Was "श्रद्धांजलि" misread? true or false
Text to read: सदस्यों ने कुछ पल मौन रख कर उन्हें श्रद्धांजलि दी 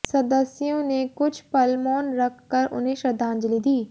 false